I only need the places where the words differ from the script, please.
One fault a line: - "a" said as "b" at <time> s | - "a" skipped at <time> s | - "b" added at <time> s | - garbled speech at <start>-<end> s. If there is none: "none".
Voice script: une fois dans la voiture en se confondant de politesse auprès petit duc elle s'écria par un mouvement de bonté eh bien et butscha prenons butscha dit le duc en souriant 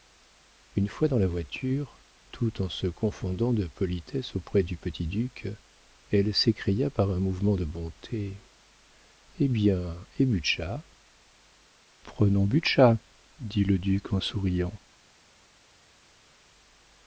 - "tout" added at 2.3 s
- "du" added at 4.6 s